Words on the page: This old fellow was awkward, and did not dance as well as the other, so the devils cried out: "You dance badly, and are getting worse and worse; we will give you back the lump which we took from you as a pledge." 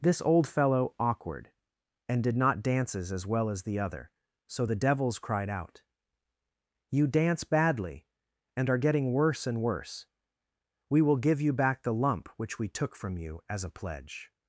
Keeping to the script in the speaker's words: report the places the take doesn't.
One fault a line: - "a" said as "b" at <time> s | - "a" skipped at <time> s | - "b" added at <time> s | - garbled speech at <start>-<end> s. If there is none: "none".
- "was" skipped at 0.9 s
- "dance" said as "dances" at 2.6 s